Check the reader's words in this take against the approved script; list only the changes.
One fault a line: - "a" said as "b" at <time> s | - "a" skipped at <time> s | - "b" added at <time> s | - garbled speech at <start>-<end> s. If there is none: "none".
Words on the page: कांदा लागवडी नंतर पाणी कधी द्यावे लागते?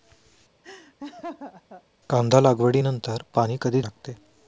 - "द्यावे" skipped at 3.8 s